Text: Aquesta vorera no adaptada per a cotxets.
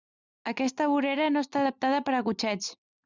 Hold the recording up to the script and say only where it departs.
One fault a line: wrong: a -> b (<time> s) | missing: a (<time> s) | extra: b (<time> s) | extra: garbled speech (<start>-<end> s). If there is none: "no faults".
extra: està (1.4 s)